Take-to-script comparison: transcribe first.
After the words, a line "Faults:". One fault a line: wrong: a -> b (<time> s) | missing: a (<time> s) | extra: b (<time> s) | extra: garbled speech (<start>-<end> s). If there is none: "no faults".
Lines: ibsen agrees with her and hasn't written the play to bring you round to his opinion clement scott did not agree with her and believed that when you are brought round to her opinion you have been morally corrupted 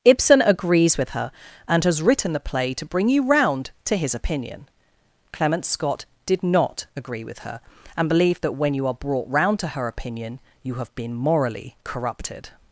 ibsen agrees with her and has written the play to bring you round to his opinion clement scott did not agree with her and believed that when you are brought round to her opinion you have been morally corrupted
Faults:
wrong: hasn't -> has (1.8 s)